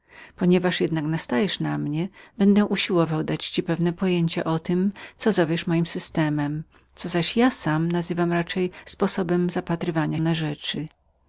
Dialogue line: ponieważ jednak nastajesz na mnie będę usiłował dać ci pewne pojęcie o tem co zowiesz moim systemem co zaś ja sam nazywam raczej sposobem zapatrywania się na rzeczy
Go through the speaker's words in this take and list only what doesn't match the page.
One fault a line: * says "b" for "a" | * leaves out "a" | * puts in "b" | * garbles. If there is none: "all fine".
* leaves out "się"